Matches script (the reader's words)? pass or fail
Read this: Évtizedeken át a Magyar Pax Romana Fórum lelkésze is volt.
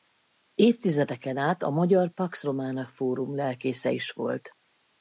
pass